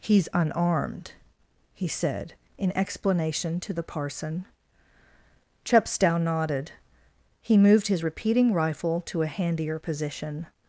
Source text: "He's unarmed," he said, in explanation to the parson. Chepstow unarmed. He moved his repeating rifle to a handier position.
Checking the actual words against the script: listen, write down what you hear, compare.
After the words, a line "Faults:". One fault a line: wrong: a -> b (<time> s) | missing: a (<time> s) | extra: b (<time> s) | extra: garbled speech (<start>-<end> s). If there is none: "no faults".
"He's unarmed," he said, in explanation to the parson. Chepstow nodded. He moved his repeating rifle to a handier position.
Faults:
wrong: unarmed -> nodded (6.2 s)